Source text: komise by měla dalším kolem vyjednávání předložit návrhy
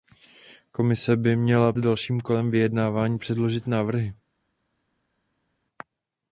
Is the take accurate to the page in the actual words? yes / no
yes